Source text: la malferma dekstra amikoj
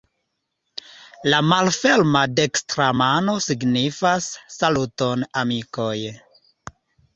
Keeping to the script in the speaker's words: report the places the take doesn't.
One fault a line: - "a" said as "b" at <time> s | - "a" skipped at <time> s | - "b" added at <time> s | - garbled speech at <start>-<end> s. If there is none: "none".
- "mano signifas saluton" added at 3.0 s